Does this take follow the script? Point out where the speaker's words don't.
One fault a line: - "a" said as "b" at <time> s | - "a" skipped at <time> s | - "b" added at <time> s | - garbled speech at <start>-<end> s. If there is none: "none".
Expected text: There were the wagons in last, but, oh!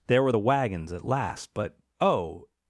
- "in" said as "at" at 0.9 s